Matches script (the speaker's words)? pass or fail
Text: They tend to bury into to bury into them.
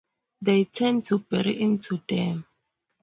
fail